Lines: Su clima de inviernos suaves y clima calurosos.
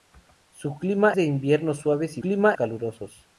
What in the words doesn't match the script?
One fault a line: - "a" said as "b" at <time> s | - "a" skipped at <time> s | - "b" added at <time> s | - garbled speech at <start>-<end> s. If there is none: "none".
none